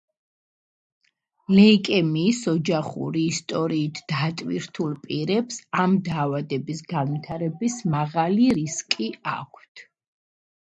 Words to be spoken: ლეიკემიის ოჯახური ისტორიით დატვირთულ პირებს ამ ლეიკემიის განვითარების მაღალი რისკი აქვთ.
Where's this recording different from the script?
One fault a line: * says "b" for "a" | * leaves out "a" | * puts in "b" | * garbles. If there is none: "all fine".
* says "დაავადების" for "ლეიკემიის"